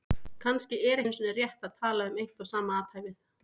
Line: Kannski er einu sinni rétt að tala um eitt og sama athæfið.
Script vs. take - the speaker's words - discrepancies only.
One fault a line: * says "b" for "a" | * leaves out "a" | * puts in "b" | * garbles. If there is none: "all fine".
all fine